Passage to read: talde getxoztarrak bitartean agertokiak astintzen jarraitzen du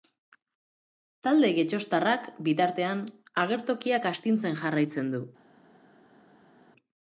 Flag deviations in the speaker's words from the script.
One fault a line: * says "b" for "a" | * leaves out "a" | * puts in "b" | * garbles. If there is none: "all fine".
all fine